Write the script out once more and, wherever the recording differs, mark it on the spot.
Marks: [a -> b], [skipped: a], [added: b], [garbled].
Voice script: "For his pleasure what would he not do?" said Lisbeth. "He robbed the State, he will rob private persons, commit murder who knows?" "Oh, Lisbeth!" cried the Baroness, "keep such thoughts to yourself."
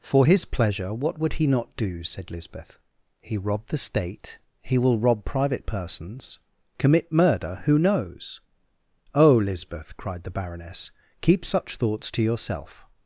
"For his pleasure what would he not do?" said Lisbeth. "He robbed the State, he will rob private persons, commit murder who knows?" "Oh, Lisbeth!" cried the Baroness, "keep such thoughts to yourself."